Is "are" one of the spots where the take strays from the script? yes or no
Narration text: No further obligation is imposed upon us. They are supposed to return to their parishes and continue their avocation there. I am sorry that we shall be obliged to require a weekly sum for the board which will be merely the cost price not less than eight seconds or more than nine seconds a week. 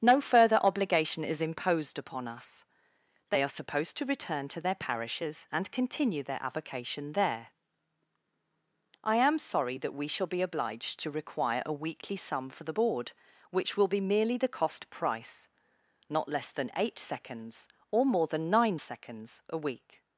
no